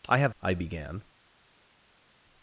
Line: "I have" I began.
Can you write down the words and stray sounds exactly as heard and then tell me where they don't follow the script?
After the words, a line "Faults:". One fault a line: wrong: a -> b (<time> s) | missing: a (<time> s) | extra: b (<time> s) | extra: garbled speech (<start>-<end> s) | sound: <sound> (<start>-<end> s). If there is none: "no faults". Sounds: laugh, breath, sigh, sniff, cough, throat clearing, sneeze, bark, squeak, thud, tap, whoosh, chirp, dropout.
"I have" I began.
Faults:
no faults